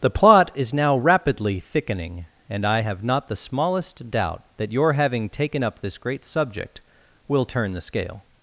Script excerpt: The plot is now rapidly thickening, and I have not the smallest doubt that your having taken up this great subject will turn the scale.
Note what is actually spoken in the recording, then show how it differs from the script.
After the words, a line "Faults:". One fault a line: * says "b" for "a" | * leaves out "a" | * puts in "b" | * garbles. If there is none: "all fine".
The plot is now rapidly thickening, and I have not the smallest doubt that your having taken up this great subject will turn the scale.
Faults:
all fine